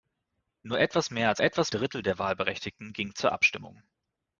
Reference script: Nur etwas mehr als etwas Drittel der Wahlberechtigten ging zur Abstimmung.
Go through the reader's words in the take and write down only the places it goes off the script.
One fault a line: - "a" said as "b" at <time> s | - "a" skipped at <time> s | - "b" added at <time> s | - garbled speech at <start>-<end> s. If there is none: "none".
none